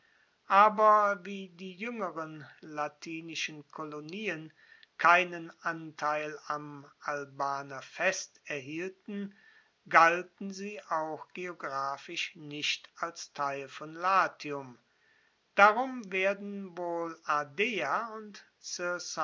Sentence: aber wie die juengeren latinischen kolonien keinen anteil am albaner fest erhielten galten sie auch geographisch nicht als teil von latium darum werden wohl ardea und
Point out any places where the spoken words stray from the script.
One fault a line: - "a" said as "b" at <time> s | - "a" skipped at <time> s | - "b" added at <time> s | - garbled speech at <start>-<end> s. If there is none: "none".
none